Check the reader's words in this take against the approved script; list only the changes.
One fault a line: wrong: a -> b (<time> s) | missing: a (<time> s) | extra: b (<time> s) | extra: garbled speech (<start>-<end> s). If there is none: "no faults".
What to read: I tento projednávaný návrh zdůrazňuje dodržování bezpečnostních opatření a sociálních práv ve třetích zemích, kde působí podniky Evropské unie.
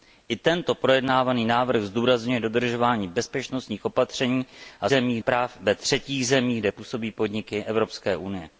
wrong: sociálních -> zemích (4.9 s)